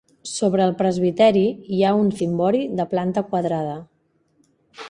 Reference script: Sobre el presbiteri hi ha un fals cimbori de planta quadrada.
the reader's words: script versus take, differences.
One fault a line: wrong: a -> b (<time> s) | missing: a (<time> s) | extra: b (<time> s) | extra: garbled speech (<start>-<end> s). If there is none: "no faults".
missing: fals (2.1 s)